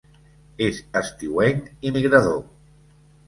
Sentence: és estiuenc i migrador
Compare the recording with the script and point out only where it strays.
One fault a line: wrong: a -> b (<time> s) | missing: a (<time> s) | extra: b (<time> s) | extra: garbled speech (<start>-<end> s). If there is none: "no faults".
no faults